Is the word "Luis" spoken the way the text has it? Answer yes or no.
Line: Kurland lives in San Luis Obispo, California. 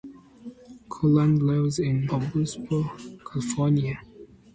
no